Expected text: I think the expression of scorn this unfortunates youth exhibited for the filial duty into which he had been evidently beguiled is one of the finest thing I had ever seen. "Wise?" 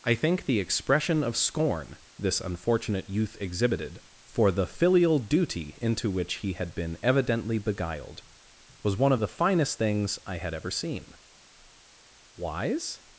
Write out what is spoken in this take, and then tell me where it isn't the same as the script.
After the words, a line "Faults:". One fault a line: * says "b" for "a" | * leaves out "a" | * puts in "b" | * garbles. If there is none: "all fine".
I think the expression of scorn this unfortunate youth exhibited for the filial duty into which he had been evidently beguiled was one of the finest things I had ever seen. "Wise?"
Faults:
* says "unfortunate" for "unfortunates"
* says "was" for "is"
* says "things" for "thing"